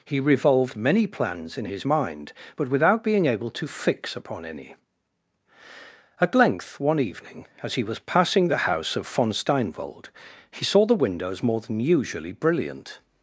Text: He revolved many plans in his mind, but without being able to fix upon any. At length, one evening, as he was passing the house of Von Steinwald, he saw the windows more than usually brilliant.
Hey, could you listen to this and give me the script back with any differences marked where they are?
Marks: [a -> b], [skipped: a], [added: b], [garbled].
He revolved many plans in his mind, but without being able to fix upon any. At length, one evening, as he was passing the house of Von Steinwald, he saw the windows more than usually brilliant.